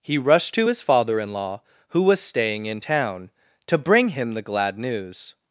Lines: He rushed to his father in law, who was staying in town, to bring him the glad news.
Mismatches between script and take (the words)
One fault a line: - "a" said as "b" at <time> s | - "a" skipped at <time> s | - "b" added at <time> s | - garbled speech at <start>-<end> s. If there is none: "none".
none